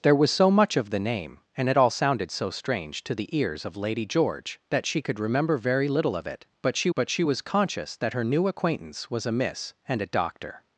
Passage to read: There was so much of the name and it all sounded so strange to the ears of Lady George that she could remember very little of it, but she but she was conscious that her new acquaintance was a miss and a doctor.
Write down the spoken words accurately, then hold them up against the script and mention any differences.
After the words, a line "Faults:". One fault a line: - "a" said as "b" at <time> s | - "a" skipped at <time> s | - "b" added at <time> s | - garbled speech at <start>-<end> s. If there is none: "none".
There was so much of the name and it all sounded so strange to the ears of Lady George that she could remember very little of it, but she but she was conscious that her new acquaintance was a miss and a doctor.
Faults:
none